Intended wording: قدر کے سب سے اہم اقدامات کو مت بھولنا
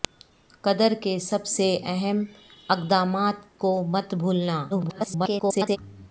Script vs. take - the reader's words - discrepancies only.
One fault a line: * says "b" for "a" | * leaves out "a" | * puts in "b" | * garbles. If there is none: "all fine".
* garbles